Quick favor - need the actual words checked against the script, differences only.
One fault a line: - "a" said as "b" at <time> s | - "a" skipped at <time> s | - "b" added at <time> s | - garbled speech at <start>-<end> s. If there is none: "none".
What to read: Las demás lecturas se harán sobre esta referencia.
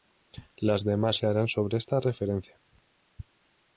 - "lecturas" skipped at 1.2 s